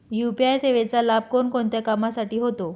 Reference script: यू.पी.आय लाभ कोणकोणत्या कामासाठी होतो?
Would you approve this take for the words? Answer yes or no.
no